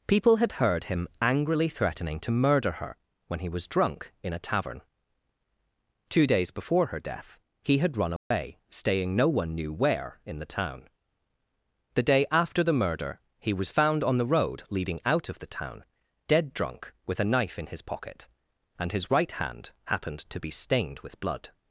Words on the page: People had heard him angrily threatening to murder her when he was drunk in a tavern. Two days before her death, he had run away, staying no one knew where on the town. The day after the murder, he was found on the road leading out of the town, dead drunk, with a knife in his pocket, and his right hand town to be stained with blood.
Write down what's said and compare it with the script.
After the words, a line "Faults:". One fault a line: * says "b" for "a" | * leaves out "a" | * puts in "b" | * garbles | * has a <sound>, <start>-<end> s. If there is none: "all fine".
People had heard him angrily threatening to murder her when he was drunk in a tavern. Two days before her death, he had run away, staying no one knew where in the town. The day after the murder, he was found on the road leading out of the town, dead drunk, with a knife in his pocket, and his right hand happened to be stained with blood.
Faults:
* has a dropout, 8.2-8.3 s
* says "in" for "on"
* says "happened" for "town"